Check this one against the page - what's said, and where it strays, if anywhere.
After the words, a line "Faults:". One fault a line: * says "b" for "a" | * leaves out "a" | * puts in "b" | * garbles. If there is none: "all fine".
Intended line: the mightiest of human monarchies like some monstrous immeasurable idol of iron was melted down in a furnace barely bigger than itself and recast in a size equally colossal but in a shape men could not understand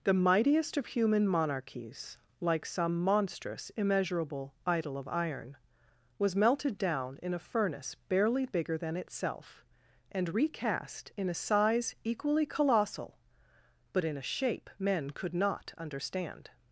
the mightiest of human monarchies like some monstrous immeasurable idol of iron was melted down in a furnace barely bigger than itself and recast in a size equally colossal but in a shape men could not understand
Faults:
all fine